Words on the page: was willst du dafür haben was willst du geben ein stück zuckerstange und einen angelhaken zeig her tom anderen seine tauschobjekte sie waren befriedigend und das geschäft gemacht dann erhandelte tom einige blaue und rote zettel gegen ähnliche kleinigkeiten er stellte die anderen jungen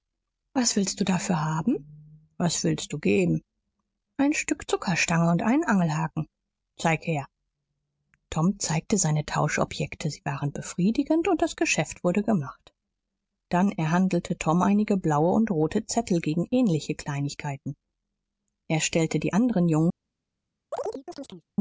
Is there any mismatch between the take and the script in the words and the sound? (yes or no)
yes